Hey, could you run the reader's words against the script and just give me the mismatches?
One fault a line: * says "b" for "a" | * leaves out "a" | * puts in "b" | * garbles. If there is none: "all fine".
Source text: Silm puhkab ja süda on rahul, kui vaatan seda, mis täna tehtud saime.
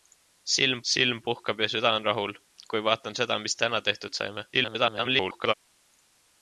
* puts in "silm"
* garbles